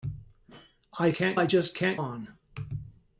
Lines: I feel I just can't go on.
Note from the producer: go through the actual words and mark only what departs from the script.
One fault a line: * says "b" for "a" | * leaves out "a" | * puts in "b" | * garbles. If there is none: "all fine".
* says "can't" for "feel"
* leaves out "go"